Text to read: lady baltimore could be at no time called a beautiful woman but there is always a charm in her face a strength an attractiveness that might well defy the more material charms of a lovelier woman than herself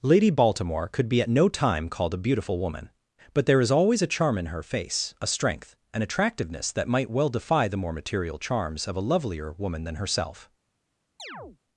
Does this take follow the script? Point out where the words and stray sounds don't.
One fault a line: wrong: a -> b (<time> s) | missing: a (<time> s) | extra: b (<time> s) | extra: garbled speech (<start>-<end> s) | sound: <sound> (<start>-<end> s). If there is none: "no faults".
sound: chirp (11.2-11.6 s)